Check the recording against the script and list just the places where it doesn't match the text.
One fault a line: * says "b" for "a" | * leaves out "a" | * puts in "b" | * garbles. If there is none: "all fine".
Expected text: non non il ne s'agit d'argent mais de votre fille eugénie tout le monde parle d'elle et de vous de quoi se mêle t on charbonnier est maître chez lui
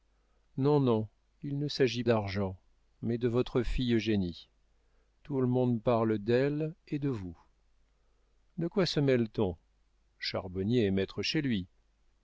all fine